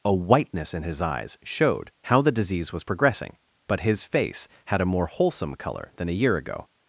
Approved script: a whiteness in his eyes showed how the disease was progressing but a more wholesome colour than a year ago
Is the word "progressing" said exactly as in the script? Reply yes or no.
yes